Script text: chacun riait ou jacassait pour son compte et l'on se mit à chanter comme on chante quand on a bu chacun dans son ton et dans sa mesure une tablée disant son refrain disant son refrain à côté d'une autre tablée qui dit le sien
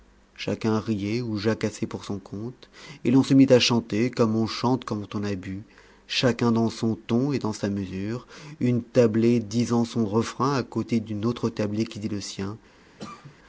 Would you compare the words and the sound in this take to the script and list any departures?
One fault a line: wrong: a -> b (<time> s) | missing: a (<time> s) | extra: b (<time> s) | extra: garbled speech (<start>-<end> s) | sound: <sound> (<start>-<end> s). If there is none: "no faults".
missing: disant son refrain (10.5 s)
sound: cough (13.0-13.3 s)